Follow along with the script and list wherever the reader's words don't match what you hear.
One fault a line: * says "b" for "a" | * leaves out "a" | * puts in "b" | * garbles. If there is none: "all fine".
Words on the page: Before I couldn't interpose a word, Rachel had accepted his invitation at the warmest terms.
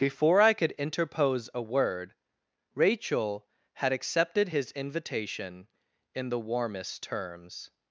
* says "could" for "couldn't"
* says "in" for "at"